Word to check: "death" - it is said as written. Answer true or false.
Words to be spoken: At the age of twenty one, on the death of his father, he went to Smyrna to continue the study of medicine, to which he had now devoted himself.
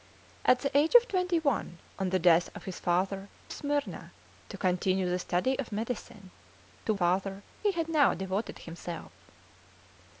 true